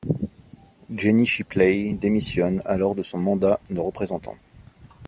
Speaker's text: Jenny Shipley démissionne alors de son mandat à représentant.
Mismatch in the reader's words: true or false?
true